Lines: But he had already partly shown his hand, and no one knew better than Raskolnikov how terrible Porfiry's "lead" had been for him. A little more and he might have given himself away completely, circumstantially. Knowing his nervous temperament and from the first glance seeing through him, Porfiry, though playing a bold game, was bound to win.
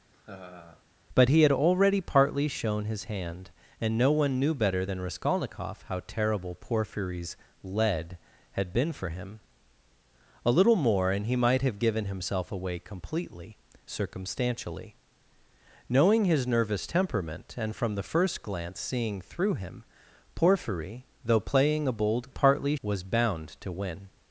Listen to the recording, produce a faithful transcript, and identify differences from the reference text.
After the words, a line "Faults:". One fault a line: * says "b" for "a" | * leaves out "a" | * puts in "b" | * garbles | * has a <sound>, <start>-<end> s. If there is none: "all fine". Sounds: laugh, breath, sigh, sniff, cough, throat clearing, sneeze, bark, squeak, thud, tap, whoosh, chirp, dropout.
But he had already partly shown his hand, and no one knew better than Raskolnikov how terrible Porfiry's "lead" had been for him. A little more and he might have given himself away completely, circumstantially. Knowing his nervous temperament and from the first glance seeing through him, Porfiry, though playing a bold partly, was bound to win.
Faults:
* has a laugh, 0.1-0.8 s
* says "partly" for "game"